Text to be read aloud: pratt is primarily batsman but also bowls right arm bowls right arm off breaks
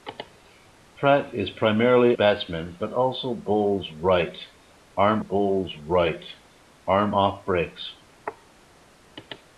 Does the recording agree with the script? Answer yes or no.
yes